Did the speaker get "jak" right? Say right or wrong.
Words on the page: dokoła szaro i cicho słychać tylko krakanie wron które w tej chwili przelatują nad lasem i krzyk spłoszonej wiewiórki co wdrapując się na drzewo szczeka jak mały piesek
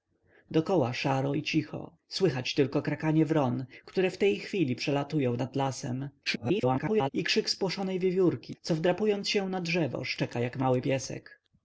right